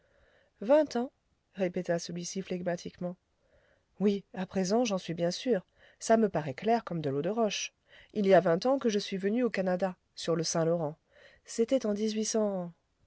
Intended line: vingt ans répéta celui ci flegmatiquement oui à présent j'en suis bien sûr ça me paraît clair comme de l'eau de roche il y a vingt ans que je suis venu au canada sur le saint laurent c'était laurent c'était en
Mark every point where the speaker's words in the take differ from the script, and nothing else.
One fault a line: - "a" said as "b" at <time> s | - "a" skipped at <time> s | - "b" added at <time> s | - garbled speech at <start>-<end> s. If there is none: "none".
- "laurent c'était" skipped at 11.8 s